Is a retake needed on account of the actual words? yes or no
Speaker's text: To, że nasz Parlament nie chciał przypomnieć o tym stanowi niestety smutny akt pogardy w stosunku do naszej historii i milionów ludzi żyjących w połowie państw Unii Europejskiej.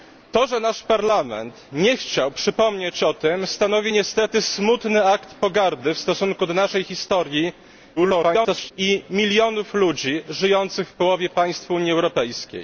yes